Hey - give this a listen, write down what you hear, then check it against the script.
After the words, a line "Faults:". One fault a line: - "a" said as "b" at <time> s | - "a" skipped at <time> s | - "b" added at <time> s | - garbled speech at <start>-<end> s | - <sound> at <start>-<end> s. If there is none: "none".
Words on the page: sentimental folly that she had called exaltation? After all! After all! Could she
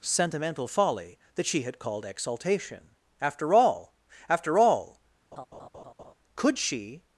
sentimental folly that she had called exaltation? After all! After all! Could she
Faults:
- laugh at 5.3-6.1 s